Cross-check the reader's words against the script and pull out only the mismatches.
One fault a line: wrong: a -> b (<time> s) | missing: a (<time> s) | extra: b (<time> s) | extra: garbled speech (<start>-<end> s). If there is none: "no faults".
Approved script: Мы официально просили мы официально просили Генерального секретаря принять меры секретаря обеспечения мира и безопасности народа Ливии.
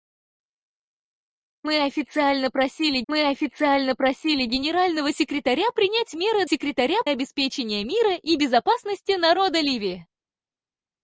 no faults